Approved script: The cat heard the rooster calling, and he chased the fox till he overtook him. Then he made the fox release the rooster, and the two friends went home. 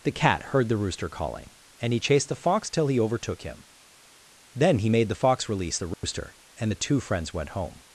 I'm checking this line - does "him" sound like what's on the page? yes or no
yes